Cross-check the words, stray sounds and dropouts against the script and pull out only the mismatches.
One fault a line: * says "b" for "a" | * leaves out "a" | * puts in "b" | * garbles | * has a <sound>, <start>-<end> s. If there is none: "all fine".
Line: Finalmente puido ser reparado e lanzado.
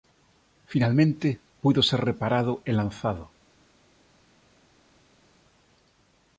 all fine